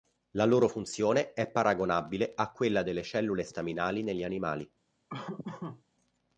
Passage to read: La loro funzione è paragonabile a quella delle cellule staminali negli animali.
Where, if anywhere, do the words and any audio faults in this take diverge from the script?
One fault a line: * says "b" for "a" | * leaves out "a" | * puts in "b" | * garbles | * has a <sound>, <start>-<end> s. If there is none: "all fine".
* has a laugh, 5.1-5.8 s